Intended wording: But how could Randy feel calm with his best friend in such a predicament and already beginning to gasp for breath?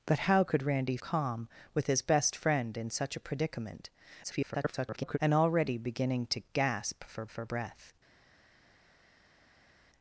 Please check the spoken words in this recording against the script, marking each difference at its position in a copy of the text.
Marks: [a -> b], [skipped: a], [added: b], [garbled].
But how could Randy [skipped: feel] calm with his best friend in such a predicament [garbled] and already beginning to gasp for [added: for] breath?